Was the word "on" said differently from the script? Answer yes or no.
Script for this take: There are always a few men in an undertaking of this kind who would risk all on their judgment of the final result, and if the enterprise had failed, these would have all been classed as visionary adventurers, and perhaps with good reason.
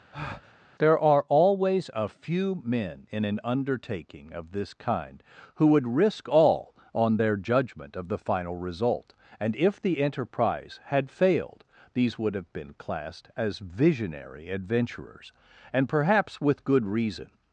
no